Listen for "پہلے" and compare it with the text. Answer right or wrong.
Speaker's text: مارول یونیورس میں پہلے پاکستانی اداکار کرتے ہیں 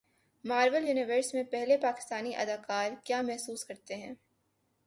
right